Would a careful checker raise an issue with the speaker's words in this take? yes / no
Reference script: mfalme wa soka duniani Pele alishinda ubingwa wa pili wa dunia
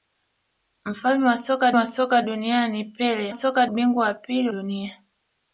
yes